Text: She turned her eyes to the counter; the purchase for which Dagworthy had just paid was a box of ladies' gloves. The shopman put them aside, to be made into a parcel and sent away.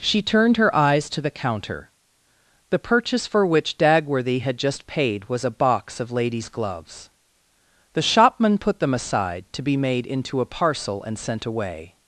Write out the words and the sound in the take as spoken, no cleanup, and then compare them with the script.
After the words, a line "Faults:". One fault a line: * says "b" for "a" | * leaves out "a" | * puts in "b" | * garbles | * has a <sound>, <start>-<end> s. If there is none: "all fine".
She turned her eyes to the counter; the purchase for which Dagworthy had just paid was a box of ladies' gloves. The shopman put them aside, to be made into a parcel and sent away.
Faults:
all fine